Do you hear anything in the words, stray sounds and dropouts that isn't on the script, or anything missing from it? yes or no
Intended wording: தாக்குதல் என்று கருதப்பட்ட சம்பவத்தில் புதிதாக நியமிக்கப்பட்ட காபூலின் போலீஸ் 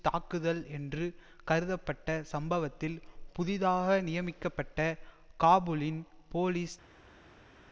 no